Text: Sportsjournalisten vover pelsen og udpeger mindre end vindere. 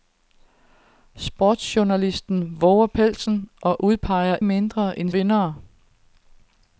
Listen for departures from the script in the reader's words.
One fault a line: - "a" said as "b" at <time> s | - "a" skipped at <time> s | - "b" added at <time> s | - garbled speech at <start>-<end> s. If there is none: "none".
none